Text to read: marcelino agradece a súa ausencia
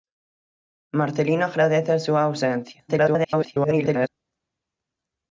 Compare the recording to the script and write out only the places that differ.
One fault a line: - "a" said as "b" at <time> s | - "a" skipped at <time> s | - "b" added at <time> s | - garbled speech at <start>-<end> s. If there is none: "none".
- garbled speech at 2.9-4.1 s